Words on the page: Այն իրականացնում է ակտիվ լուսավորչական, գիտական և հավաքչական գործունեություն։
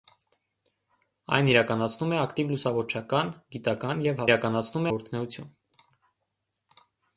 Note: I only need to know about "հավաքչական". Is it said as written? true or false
false